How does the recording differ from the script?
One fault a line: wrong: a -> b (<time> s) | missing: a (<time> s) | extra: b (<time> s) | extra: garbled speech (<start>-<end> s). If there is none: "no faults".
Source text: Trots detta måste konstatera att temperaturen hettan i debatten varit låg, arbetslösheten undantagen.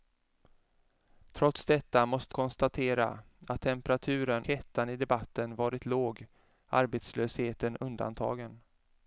no faults